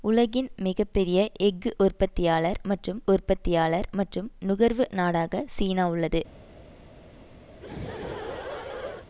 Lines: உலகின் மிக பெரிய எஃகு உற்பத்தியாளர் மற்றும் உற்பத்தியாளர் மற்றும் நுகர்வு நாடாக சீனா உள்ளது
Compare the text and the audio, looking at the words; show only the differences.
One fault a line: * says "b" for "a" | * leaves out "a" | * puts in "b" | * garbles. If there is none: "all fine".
all fine